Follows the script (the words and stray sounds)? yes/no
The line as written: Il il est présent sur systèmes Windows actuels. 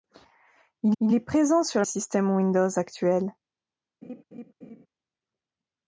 no